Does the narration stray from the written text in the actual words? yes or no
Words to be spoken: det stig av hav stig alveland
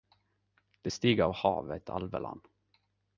yes